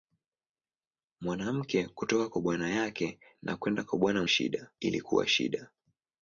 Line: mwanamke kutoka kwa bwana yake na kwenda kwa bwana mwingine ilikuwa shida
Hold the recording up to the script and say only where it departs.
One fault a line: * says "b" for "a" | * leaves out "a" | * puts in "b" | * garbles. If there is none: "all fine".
* says "shida" for "mwingine"